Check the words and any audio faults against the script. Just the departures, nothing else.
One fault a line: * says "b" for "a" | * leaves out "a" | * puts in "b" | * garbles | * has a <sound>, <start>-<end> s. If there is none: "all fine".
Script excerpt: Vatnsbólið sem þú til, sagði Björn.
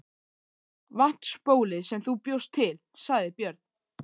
* puts in "bjóst"